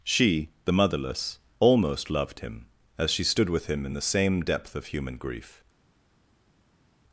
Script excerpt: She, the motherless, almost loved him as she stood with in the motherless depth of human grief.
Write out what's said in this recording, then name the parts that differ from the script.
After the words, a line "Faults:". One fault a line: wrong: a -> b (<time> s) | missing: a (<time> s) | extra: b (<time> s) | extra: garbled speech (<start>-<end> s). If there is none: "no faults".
She, the motherless, almost loved him as she stood with him in the same depth of human grief.
Faults:
extra: him (3.7 s)
wrong: motherless -> same (4.0 s)